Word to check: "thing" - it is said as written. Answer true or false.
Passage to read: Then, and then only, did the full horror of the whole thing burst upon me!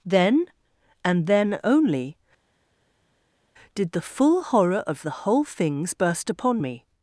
false